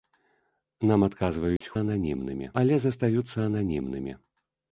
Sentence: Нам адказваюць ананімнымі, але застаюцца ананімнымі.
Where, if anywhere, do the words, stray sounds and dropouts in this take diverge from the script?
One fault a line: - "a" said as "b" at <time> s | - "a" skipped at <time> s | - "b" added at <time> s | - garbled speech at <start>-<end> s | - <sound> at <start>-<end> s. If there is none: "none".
- dropout at 1.6-1.6 s